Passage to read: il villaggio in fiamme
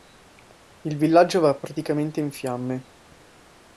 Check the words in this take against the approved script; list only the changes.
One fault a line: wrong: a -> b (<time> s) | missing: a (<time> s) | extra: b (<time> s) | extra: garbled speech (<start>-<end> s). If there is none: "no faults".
extra: va praticamente (1.4 s)